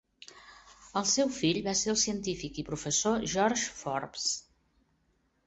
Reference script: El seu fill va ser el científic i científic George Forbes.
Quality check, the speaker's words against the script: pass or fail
fail